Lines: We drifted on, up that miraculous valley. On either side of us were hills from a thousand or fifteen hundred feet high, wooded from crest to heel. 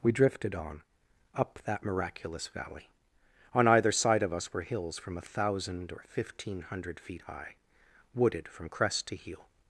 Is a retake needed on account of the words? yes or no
no